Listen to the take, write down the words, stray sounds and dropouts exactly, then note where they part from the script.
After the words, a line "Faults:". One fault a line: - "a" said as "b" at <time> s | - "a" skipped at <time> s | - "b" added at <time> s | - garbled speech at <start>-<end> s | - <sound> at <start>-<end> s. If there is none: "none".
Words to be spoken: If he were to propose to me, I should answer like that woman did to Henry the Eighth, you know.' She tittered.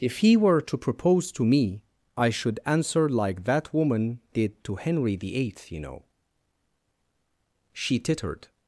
If he were to propose to me, I should answer like that woman did to Henry the Eighth, you know.' She tittered.
Faults:
none